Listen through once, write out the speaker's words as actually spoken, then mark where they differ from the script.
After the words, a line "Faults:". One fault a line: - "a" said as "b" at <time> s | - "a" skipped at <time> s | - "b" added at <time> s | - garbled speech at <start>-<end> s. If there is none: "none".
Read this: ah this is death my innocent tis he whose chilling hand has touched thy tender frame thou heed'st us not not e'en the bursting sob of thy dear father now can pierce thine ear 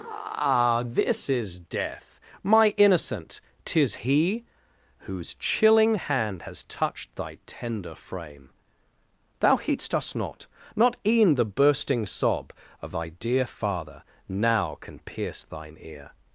ah this is death my innocent tis he whose chilling hand has touched thy tender frame thou heed'st us not not e'en the bursting sob of thy dear father now can pierce thine ear
Faults:
none